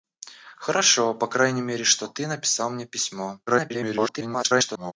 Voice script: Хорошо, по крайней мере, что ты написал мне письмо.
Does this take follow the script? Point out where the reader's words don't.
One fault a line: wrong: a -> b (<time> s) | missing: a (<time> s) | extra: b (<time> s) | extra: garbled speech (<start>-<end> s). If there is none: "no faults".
extra: garbled speech (3.5-4.9 s)